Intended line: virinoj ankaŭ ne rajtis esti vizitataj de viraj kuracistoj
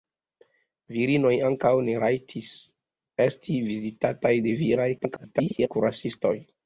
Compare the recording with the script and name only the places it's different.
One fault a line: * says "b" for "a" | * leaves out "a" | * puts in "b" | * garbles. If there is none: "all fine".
* garbles